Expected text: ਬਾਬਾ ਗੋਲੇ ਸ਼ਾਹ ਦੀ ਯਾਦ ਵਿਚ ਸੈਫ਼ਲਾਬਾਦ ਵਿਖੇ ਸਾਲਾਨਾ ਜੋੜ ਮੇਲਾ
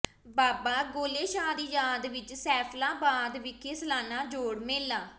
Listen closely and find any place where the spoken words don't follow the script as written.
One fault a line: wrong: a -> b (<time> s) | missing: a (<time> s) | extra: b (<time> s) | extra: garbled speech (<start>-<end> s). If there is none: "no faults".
no faults